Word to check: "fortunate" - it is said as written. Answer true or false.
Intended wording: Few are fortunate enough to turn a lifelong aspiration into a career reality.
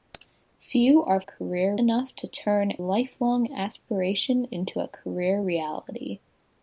false